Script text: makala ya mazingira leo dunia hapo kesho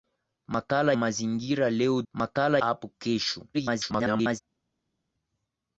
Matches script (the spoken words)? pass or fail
fail